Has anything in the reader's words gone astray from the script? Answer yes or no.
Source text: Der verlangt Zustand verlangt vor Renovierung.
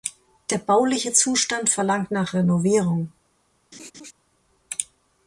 yes